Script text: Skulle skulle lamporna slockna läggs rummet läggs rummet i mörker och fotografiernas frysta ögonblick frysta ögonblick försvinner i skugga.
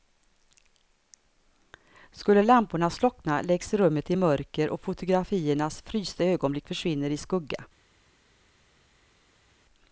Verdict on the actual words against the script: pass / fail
fail